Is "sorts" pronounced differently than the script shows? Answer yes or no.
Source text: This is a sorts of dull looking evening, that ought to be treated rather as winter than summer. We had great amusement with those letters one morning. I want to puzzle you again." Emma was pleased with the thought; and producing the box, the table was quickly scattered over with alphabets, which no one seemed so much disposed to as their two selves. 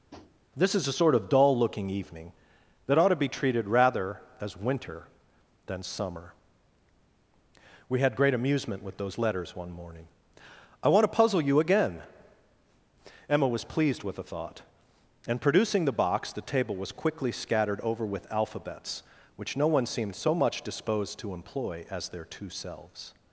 yes